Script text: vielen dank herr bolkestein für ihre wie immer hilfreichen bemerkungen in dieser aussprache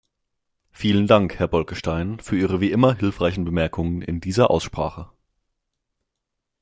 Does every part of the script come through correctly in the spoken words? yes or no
yes